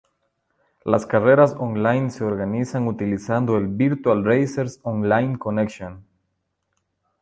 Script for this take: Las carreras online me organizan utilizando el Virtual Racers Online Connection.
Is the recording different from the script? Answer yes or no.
yes